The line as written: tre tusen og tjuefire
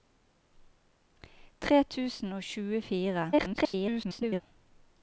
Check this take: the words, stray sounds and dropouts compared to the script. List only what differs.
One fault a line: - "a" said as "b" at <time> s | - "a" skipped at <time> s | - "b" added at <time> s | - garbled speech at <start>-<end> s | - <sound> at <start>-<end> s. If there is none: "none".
- garbled speech at 3.3-4.4 s